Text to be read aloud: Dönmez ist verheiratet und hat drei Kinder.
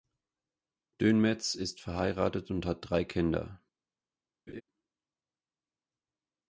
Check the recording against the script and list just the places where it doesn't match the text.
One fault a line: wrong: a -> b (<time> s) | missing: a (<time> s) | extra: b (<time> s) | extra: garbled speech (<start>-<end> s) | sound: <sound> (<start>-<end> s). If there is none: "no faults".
sound: laugh (4.5-4.6 s)